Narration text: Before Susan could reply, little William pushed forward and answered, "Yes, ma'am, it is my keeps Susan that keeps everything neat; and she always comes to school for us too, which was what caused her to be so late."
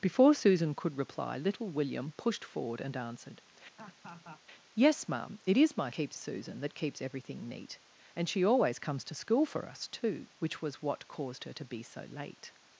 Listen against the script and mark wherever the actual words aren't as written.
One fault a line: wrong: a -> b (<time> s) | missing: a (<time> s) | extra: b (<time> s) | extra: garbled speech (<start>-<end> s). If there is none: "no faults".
no faults